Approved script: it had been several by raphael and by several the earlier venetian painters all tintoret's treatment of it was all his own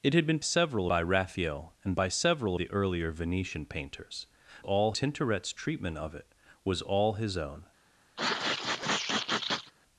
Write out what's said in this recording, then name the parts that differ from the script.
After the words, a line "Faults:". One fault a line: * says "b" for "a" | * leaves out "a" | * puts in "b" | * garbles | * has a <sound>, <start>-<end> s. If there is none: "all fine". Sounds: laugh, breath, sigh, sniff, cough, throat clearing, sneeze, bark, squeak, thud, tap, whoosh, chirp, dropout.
it had been several by raphael and by several the earlier venetian painters all tintoret's treatment of it was all his own
Faults:
* has a sneeze, 8.2-9.7 s